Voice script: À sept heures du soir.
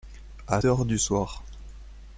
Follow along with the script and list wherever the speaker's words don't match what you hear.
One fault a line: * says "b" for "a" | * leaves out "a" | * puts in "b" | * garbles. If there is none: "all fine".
* leaves out "sept"